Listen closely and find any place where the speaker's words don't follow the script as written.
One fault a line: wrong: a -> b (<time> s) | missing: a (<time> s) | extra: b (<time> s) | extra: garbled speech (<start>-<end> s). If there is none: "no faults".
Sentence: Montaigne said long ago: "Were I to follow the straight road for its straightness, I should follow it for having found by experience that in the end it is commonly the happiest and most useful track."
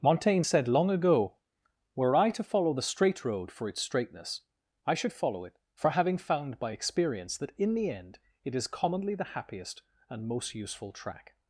no faults